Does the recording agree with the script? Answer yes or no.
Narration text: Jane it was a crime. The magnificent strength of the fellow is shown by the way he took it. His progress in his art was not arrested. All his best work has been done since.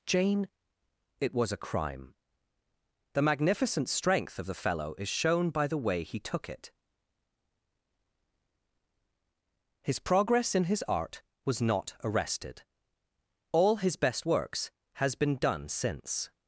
no